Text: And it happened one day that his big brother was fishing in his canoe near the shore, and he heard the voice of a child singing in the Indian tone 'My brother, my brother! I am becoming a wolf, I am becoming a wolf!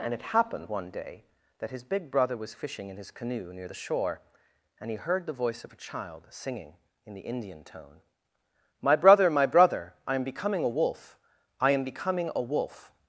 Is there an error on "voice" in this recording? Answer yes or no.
no